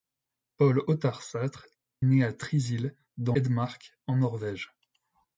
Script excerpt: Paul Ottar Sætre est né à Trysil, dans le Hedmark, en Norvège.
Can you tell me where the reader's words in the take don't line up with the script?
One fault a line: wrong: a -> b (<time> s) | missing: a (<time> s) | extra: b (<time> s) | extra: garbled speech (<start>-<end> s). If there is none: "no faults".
missing: est (1.7 s)
missing: le (3.4 s)